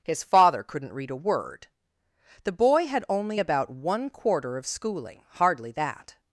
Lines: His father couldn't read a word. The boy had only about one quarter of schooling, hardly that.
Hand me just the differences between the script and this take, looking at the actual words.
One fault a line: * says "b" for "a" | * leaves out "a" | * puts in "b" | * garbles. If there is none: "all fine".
all fine